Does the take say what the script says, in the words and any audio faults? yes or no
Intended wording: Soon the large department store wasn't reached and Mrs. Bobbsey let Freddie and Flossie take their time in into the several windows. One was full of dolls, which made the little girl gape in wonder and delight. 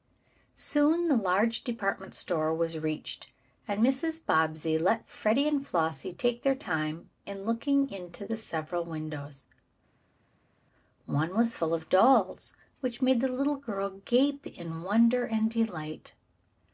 no